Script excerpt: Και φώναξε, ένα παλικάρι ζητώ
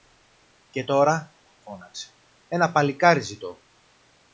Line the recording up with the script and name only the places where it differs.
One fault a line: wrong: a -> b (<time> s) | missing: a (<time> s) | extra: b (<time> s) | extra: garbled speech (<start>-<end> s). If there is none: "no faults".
extra: τώρα (0.8 s)